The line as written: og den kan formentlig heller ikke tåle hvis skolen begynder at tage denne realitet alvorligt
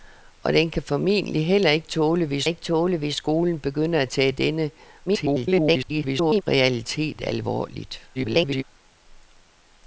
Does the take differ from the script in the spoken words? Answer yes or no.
yes